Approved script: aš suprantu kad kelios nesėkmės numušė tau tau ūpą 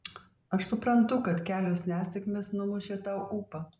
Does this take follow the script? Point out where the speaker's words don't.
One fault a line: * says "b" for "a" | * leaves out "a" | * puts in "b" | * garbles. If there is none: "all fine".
* leaves out "tau"